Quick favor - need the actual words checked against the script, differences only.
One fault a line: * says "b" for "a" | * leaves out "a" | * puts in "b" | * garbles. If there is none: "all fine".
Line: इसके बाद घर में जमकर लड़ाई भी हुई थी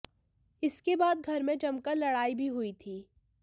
all fine